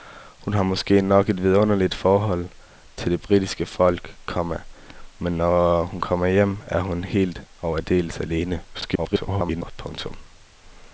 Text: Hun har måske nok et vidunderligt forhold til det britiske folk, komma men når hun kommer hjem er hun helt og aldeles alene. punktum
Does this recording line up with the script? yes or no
no